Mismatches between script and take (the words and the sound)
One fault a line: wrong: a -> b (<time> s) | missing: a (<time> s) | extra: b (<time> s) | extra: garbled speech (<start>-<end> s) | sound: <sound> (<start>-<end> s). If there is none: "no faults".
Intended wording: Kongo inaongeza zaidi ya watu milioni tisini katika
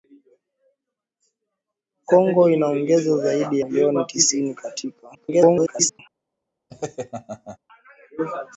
missing: ya watu (3.6 s)
extra: garbled speech (5.1-6.0 s)
sound: laugh (6.7-7.6 s)